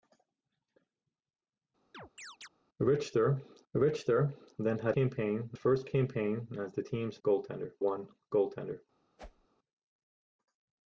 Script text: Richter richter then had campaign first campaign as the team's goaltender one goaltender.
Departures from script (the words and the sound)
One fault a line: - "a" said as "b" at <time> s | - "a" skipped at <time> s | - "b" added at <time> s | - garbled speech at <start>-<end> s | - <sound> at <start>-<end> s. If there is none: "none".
- chirp at 1.9-2.5 s
- whoosh at 9.2-9.5 s